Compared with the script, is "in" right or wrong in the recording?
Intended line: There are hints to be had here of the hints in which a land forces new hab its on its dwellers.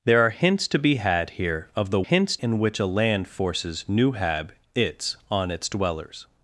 right